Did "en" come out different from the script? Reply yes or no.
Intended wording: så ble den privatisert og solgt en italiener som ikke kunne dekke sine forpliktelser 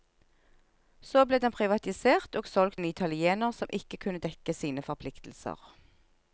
no